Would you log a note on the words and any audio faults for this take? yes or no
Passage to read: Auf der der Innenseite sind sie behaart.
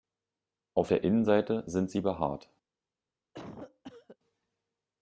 yes